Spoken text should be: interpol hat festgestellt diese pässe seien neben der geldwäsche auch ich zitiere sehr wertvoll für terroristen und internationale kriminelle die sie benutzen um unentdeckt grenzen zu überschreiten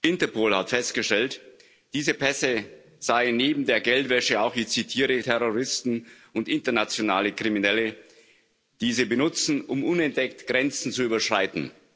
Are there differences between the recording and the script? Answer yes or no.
yes